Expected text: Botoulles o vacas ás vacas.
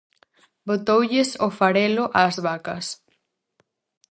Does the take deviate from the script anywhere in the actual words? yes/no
yes